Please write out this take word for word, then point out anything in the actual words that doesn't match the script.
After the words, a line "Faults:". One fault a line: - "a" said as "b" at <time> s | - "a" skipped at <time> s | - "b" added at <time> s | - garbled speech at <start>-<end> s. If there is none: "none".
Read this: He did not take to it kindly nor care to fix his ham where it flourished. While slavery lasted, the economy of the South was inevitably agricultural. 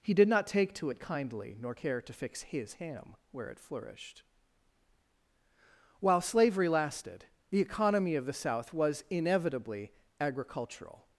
He did not take to it kindly nor care to fix his ham where it flourished. While slavery lasted, the economy of the South was inevitably agricultural.
Faults:
none